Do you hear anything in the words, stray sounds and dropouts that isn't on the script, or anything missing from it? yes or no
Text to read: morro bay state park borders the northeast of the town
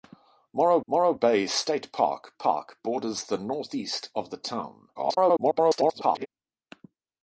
yes